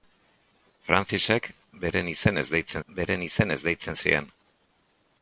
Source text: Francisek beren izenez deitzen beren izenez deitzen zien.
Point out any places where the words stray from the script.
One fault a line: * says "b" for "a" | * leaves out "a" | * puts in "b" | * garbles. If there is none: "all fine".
all fine